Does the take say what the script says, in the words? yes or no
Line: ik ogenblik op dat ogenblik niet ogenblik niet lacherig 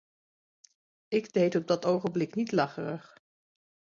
no